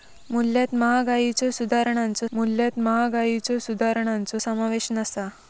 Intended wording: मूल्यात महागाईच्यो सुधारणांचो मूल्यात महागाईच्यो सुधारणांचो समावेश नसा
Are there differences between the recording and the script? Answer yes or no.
no